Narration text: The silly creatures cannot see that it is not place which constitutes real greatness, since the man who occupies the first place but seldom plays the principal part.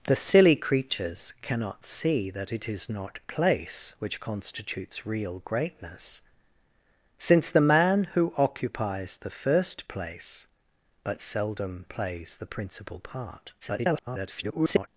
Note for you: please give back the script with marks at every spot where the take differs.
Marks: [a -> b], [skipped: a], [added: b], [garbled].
The silly creatures cannot see that it is not place which constitutes real greatness, since the man who occupies the first place but seldom plays the principal part. [garbled]